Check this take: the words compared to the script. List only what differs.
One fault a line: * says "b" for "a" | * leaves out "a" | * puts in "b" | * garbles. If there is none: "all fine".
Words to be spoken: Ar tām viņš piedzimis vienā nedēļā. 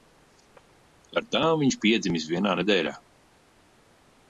all fine